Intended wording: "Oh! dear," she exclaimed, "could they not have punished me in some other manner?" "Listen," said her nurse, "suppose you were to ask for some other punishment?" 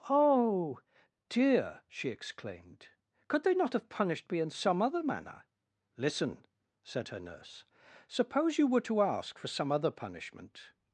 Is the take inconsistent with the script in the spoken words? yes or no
no